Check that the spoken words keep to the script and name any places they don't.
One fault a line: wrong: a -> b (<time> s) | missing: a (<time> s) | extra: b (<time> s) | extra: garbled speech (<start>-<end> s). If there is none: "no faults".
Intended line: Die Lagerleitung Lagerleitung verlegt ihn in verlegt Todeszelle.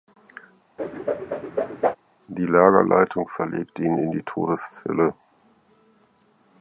missing: Lagerleitung (3.3 s)
wrong: verlegt -> die (4.1 s)